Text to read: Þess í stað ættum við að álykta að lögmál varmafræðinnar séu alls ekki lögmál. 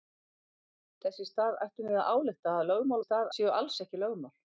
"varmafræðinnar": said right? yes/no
no